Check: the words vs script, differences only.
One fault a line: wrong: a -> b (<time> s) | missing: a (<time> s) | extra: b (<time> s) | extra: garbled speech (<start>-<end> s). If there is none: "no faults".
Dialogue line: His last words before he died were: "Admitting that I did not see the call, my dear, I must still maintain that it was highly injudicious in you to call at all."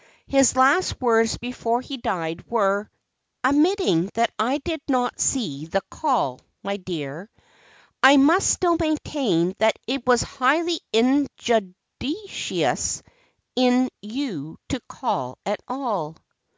no faults